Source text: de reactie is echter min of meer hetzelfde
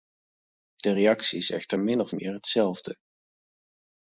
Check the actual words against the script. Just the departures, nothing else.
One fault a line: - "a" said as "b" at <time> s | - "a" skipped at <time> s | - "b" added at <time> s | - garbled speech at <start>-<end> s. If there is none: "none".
none